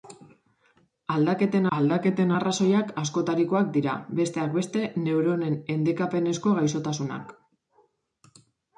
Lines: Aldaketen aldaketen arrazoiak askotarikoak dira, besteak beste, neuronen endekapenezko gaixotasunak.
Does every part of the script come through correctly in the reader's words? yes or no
yes